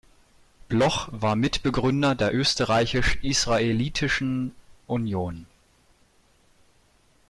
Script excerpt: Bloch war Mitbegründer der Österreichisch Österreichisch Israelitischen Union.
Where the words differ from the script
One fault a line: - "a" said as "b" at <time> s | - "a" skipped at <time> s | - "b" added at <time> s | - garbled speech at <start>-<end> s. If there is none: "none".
- "Österreichisch" skipped at 3.2 s